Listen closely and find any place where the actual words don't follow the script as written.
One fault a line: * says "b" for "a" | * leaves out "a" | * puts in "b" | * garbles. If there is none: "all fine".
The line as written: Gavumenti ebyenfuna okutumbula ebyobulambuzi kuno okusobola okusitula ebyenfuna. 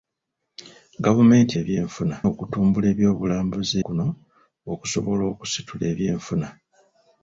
all fine